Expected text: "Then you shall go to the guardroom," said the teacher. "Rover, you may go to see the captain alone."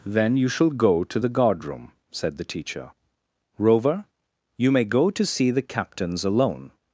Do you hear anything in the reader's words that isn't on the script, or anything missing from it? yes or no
yes